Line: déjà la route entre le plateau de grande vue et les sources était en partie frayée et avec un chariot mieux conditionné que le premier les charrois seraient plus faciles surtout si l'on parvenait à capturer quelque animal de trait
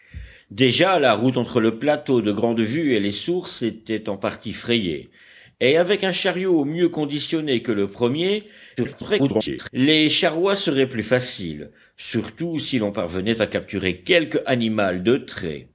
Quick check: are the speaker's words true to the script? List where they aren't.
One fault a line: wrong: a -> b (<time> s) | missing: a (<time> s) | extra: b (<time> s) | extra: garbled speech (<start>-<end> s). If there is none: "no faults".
extra: garbled speech (8.8-9.7 s)